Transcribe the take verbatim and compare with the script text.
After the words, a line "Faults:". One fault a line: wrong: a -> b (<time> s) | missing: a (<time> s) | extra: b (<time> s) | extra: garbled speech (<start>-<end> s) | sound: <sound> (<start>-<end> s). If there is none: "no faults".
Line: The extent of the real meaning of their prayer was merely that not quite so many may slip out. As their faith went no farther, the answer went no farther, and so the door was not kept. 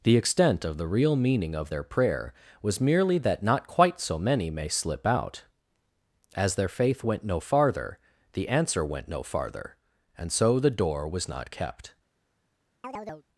The extent of the real meaning of their prayer was merely that not quite so many may slip out. As their faith went no farther, the answer went no farther, and so the door was not kept.
Faults:
sound: chirp (12.8-13.3 s)